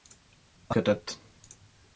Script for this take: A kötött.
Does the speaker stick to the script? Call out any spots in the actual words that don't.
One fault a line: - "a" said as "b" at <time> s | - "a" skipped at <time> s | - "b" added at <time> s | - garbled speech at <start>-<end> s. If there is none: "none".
none